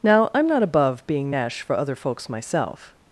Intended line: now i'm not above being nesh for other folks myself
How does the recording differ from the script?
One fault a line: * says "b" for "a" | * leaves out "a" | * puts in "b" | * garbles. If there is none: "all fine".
all fine